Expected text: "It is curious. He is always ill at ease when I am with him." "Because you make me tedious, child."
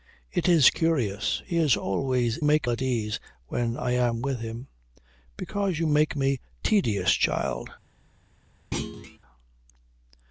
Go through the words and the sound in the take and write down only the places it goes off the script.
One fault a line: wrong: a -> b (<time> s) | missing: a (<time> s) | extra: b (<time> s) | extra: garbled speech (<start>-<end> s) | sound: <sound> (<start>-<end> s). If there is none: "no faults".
wrong: ill -> make (2.4 s)
sound: thud (8.7-9.2 s)